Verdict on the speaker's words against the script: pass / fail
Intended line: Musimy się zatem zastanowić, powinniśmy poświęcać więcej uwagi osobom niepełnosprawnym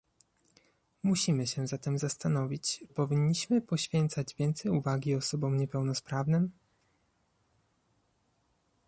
pass